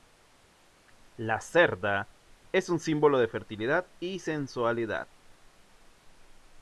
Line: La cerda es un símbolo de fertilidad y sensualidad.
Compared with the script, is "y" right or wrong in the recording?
right